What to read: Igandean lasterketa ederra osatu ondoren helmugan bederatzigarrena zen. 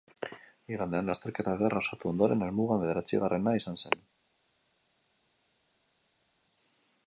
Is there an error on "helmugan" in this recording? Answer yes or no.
no